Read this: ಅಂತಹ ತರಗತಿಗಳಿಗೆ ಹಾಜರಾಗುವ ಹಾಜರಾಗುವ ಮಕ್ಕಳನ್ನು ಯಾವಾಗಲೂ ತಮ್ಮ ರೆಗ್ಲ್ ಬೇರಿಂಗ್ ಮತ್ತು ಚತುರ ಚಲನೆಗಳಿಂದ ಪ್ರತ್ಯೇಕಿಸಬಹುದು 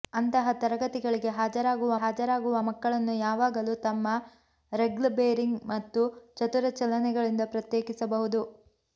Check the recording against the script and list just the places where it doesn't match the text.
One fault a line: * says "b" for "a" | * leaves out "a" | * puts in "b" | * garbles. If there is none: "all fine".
all fine